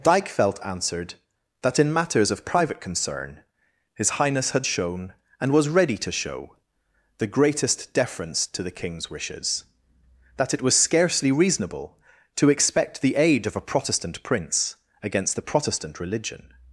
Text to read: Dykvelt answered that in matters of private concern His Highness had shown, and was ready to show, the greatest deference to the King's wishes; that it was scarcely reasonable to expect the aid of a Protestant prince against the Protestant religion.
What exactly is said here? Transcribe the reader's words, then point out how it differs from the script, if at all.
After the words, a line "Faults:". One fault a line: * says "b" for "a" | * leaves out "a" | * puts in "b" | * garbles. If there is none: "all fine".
Dykvelt answered that in matters of private concern His Highness had shown, and was ready to show, the greatest deference to the King's wishes; that it was scarcely reasonable to expect the aid of a Protestant prince against the Protestant religion.
Faults:
all fine